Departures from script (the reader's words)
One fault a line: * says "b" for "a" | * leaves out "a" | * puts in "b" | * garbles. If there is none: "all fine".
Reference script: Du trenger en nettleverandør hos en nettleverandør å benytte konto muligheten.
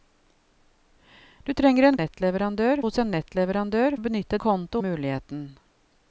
all fine